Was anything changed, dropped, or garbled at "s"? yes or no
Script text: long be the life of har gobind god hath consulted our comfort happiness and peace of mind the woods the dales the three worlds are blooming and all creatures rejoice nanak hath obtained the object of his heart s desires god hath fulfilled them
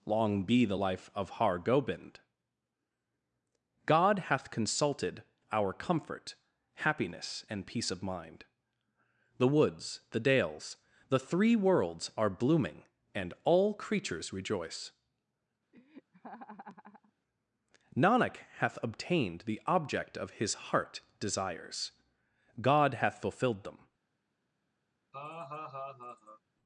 yes